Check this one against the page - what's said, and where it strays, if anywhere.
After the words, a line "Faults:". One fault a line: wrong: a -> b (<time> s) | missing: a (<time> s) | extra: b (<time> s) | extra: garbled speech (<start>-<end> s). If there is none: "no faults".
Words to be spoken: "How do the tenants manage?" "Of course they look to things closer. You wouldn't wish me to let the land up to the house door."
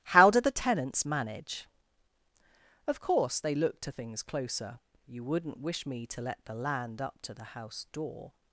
"How do the tenants manage?" "Of course they look to things closer. You wouldn't wish me to let the land up to the house door."
Faults:
no faults